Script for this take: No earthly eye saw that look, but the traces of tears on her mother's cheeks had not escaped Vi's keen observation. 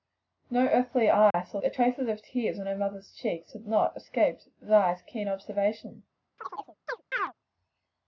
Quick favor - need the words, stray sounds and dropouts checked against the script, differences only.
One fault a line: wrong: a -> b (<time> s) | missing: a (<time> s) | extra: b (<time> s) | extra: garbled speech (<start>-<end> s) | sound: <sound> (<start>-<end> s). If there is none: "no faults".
sound: dropout (1.3-1.3 s)
missing: that look but (1.6 s)
sound: chirp (6.4-7.3 s)